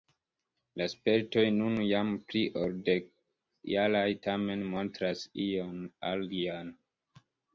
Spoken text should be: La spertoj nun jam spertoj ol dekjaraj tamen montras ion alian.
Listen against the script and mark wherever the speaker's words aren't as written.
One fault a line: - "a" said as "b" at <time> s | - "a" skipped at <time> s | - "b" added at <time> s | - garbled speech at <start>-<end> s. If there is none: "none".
- "spertoj" said as "pli" at 2.3 s